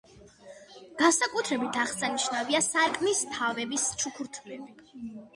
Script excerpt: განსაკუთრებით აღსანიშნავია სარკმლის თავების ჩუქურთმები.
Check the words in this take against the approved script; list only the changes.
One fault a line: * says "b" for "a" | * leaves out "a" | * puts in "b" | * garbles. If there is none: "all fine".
all fine